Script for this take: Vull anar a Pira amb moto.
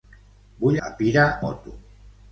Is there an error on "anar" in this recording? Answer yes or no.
yes